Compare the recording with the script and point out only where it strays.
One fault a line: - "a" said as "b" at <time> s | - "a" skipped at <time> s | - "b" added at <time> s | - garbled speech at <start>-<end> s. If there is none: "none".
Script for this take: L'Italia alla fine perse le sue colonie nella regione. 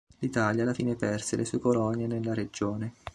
none